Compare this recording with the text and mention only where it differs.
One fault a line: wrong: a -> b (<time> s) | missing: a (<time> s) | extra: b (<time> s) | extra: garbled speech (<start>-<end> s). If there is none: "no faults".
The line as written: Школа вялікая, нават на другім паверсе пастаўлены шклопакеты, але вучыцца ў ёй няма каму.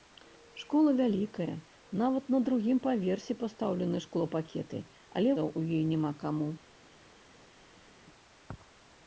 missing: вучыцца (5.3 s)